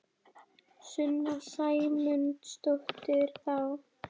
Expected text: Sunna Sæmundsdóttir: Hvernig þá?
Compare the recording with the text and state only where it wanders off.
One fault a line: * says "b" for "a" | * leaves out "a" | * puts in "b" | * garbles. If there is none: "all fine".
* leaves out "Hvernig"